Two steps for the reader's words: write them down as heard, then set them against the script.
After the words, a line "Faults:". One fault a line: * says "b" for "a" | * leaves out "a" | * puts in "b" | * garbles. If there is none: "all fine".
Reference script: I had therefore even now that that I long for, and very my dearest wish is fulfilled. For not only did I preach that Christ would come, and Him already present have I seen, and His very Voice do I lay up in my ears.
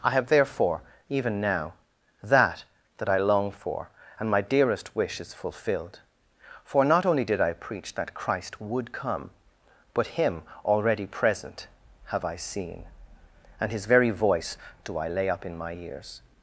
I have therefore even now that that I long for, and my dearest wish is fulfilled. For not only did I preach that Christ would come, but Him already present have I seen, and His very Voice do I lay up in my ears.
Faults:
* says "have" for "had"
* leaves out "very"
* says "but" for "and"